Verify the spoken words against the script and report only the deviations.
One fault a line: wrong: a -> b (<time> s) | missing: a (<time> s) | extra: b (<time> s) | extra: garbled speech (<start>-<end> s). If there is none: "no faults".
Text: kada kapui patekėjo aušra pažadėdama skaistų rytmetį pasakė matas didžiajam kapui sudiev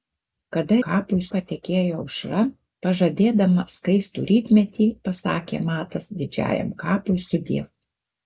no faults